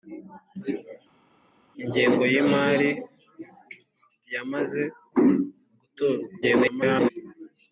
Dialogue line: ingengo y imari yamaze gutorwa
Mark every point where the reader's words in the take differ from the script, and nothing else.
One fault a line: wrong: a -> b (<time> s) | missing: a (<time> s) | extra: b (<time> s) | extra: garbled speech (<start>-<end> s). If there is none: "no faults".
extra: garbled speech (6.4-7.1 s)